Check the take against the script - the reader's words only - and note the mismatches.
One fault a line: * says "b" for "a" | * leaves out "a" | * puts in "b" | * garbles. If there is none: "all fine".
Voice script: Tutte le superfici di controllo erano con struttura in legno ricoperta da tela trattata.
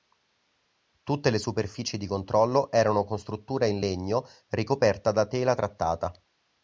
all fine